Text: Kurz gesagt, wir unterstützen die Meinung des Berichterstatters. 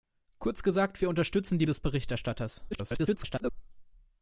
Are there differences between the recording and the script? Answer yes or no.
yes